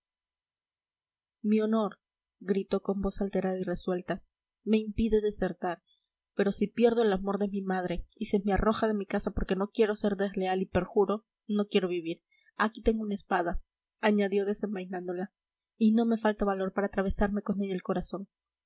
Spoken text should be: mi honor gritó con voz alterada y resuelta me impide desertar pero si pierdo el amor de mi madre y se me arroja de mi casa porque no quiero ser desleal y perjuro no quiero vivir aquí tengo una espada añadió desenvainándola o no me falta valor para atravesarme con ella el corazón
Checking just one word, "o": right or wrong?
wrong